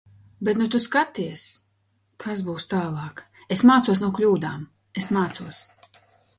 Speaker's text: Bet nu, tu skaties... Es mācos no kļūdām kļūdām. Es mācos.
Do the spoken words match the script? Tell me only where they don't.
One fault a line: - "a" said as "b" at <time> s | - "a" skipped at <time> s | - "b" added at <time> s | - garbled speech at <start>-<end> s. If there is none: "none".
- "kas būs tālāk" added at 2.2 s
- "kļūdām" skipped at 4.6 s